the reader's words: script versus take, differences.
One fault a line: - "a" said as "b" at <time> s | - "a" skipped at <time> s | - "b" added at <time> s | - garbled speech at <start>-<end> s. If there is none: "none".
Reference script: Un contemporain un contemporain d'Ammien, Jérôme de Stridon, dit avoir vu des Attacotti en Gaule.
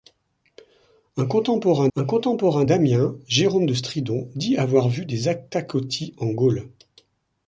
none